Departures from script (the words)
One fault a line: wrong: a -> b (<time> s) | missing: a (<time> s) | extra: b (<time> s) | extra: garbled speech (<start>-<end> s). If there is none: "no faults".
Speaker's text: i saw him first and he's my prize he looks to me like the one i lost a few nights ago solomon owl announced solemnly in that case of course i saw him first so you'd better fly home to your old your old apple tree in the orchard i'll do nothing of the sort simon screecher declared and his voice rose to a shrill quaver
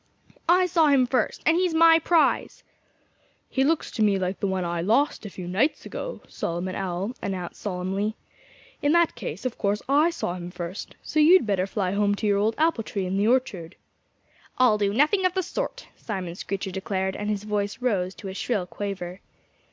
missing: your old (12.5 s)